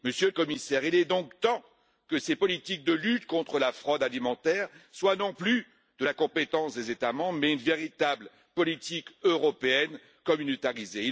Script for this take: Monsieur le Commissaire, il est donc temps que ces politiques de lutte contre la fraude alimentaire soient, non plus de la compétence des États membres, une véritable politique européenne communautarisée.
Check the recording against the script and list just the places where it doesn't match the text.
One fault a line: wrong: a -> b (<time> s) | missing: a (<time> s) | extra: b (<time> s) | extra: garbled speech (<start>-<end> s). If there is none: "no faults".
extra: mais (7.4 s)